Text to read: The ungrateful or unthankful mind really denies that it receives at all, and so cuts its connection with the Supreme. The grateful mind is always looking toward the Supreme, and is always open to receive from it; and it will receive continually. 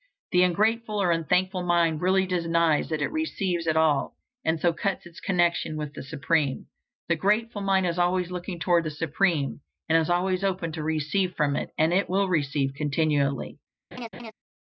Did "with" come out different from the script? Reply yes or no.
no